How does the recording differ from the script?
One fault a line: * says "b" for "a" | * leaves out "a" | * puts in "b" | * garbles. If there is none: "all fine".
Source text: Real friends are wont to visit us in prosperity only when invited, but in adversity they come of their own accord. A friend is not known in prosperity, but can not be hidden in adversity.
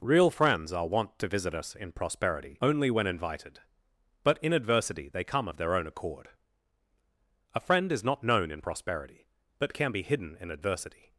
* leaves out "not"